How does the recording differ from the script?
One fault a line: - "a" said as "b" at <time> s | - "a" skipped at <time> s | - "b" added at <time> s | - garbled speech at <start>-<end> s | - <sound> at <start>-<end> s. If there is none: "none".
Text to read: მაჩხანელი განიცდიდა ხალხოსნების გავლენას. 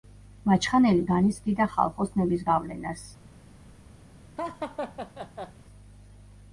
- laugh at 4.4-5.5 s